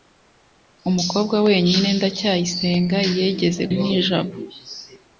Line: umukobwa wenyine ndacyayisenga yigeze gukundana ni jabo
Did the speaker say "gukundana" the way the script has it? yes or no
no